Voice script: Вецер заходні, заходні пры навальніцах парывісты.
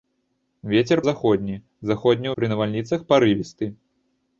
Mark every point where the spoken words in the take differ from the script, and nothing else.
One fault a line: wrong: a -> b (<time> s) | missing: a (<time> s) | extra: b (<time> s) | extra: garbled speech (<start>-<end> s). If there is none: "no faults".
no faults